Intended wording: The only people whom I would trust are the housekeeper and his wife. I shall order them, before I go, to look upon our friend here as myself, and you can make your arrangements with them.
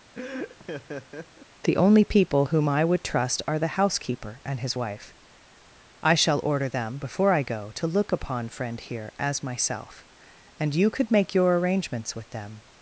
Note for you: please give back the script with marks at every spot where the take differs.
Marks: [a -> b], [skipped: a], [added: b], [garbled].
The only people whom I would trust are the housekeeper and his wife. I shall order them, before I go, to look upon [skipped: our] friend here as myself, and you [can -> could] make your arrangements with them.